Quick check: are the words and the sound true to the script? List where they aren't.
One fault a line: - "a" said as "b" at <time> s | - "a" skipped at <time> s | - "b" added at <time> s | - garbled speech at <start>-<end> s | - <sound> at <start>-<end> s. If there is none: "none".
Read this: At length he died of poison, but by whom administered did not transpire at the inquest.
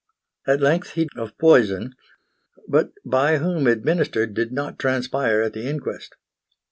- "died" skipped at 1.1 s